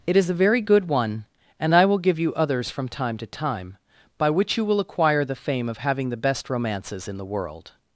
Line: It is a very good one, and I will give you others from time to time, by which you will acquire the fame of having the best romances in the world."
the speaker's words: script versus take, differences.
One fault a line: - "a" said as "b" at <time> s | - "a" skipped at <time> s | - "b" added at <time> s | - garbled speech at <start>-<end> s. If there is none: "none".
none